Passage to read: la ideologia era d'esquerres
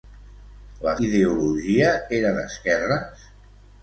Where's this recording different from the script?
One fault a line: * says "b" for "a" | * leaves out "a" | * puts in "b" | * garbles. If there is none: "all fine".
all fine